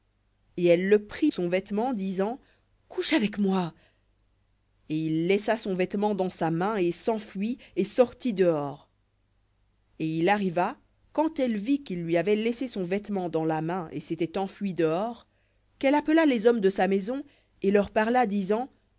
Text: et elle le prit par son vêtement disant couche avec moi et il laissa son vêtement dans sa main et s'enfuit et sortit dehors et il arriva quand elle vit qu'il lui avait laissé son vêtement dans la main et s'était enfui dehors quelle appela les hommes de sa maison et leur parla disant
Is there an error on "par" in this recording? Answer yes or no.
yes